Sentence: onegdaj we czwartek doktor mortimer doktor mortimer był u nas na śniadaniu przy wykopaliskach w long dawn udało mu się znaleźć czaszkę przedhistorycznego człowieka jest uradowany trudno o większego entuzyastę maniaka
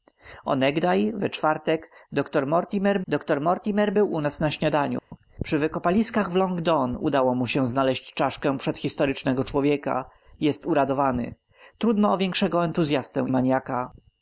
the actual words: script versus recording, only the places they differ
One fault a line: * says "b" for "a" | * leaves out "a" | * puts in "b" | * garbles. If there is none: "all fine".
all fine